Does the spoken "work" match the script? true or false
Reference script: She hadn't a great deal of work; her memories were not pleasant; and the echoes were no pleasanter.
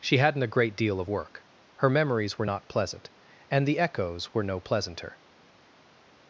true